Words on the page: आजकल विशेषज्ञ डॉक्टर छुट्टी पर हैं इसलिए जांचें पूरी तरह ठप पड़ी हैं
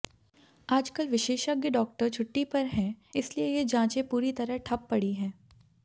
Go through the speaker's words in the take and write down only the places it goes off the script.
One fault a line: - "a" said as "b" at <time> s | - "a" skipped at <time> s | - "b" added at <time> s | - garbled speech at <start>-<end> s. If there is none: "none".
- "ये" added at 3.5 s